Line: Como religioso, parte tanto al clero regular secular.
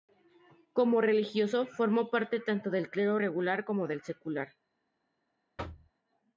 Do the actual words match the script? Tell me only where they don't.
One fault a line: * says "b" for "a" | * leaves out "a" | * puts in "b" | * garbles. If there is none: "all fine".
* puts in "formó"
* says "del" for "al"
* puts in "como del"